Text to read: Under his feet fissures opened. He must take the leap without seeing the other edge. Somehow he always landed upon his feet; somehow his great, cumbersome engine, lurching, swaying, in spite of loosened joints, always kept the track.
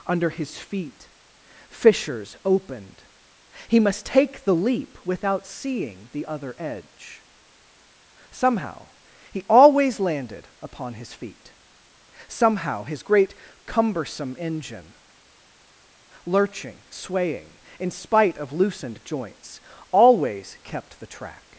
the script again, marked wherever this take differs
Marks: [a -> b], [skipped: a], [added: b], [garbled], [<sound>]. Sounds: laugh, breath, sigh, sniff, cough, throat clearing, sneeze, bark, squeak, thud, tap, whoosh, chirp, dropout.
Under his feet fissures opened. He must take the leap without seeing the other edge. Somehow he always landed upon his feet; somehow his great, cumbersome engine, lurching, swaying, in spite of loosened joints, always kept the track.